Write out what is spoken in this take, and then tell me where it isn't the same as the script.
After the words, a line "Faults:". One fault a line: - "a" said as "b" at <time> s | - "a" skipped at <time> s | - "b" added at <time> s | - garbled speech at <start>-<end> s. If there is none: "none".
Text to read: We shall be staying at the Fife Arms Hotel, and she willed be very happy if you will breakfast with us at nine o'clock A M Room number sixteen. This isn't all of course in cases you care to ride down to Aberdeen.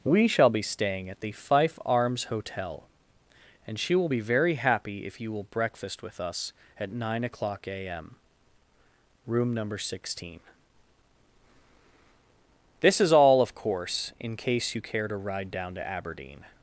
We shall be staying at the Fife Arms Hotel, and she will be very happy if you will breakfast with us at nine o'clock A M Room number sixteen. This is all of course in case you care to ride down to Aberdeen.
Faults:
- "willed" said as "will" at 3.9 s
- "isn't" said as "is" at 13.0 s
- "cases" said as "case" at 14.4 s